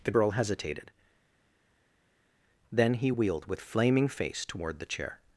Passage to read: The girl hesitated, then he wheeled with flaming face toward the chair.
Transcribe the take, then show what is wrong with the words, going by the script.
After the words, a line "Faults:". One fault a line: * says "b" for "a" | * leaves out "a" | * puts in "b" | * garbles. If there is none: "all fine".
The girl hesitated, then he wheeled with flaming face toward the chair.
Faults:
all fine